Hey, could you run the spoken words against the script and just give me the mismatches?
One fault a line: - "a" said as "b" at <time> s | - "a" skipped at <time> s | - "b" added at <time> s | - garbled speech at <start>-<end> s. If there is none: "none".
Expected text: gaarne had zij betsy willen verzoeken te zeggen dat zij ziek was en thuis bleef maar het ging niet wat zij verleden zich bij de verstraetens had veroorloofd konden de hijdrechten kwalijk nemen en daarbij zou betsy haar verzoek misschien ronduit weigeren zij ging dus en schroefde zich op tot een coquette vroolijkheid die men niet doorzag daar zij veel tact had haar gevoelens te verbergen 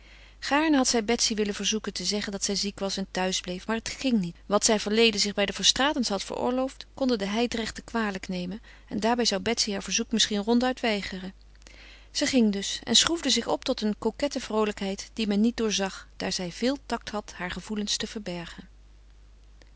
none